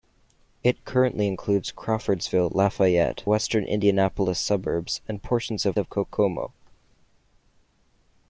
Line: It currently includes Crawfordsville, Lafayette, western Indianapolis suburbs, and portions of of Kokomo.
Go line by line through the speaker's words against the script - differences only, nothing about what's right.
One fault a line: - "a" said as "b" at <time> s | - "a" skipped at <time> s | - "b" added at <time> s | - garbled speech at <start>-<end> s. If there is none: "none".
none